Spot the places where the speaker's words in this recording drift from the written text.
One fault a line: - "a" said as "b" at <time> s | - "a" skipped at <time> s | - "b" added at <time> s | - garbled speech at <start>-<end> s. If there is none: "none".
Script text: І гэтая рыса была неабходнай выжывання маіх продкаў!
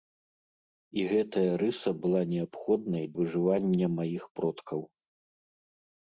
none